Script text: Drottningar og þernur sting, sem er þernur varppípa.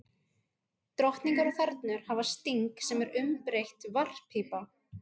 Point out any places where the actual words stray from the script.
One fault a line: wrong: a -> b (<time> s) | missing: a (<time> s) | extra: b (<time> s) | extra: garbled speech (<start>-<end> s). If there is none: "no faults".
extra: hafa (2.1 s)
wrong: þernur -> umbreytt (3.3 s)